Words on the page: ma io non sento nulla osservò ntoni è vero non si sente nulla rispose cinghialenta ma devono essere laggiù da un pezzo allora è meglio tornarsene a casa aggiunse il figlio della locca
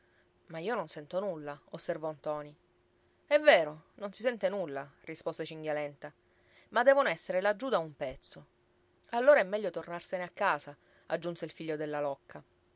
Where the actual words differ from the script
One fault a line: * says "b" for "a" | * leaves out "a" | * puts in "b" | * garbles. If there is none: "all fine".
all fine